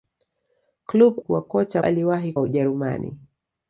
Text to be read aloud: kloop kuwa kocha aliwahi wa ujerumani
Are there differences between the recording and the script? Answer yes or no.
no